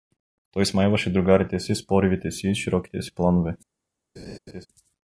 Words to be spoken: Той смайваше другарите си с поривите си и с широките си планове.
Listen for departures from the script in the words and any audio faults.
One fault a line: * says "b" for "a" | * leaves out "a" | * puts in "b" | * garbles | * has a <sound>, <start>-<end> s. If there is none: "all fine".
* has a laugh, 4.2-4.7 s